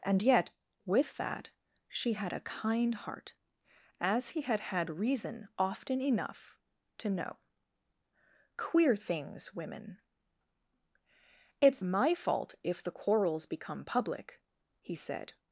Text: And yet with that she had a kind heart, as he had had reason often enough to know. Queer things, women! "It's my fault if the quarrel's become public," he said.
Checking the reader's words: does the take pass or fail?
pass